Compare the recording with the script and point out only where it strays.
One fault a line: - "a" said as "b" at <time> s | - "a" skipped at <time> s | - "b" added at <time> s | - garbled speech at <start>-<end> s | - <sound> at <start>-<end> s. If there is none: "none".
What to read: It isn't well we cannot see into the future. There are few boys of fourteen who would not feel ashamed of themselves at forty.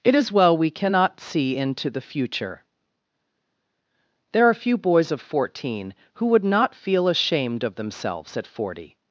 - "isn't" said as "is" at 0.1 s